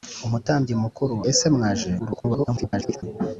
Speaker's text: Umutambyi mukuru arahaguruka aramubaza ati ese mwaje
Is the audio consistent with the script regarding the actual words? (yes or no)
no